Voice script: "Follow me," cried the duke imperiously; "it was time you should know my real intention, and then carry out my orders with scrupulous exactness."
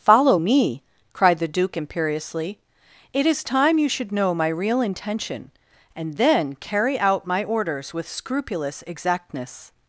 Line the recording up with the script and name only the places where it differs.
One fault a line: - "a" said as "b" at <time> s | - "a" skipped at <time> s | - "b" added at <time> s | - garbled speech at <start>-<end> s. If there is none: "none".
- "was" said as "is" at 3.3 s